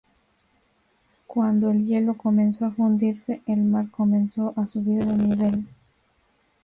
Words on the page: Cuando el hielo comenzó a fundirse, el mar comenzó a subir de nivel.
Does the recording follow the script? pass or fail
pass